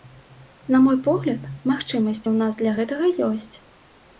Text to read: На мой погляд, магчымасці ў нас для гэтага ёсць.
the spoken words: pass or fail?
pass